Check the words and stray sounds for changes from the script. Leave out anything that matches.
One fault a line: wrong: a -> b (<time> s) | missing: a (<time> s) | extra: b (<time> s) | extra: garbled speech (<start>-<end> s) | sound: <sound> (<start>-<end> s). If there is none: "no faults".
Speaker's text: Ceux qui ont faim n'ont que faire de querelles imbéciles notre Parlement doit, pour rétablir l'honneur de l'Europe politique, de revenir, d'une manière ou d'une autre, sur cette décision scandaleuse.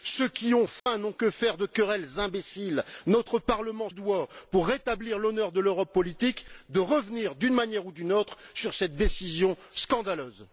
sound: dropout (0.8-0.9 s)